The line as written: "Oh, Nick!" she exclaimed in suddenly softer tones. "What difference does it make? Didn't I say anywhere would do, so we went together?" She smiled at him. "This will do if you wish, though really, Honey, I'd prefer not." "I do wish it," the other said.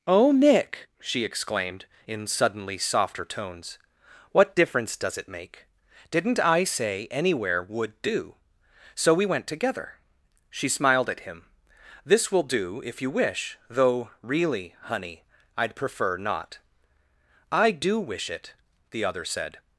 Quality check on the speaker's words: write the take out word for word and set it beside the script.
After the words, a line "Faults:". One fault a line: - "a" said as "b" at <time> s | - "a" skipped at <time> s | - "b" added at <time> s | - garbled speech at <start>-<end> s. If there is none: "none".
"Oh, Nick!" she exclaimed in suddenly softer tones. "What difference does it make? Didn't I say anywhere would do, so we went together?" She smiled at him. "This will do if you wish, though really, Honey, I'd prefer not." "I do wish it," the other said.
Faults:
none